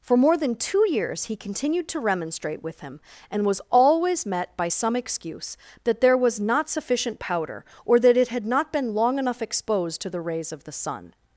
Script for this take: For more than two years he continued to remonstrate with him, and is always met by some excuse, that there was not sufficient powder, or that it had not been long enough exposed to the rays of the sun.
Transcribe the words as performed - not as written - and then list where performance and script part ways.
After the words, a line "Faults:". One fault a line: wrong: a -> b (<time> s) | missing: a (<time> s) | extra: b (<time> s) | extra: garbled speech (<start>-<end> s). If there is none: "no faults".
For more than two years he continued to remonstrate with him, and was always met by some excuse, that there was not sufficient powder, or that it had not been long enough exposed to the rays of the sun.
Faults:
wrong: is -> was (3.5 s)